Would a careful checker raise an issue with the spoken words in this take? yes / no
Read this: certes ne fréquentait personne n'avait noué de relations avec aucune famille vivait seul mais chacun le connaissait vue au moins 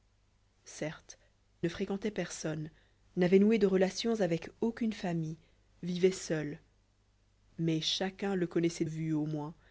no